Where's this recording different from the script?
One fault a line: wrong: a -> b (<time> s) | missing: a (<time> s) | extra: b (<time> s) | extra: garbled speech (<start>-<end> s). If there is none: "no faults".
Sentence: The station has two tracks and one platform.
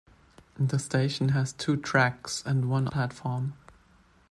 no faults